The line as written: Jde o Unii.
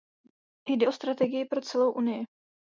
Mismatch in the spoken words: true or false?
true